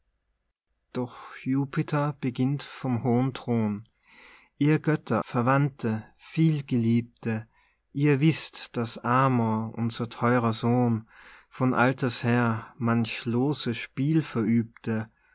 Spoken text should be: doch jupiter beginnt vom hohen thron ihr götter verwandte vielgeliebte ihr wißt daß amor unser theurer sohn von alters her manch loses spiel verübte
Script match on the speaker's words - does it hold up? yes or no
yes